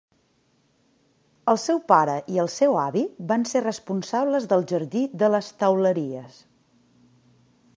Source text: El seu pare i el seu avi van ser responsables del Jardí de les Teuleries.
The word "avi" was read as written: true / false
true